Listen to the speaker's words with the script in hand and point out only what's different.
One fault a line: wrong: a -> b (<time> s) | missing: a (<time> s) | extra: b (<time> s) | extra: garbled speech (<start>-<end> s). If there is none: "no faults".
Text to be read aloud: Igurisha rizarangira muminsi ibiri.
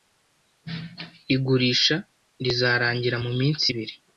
no faults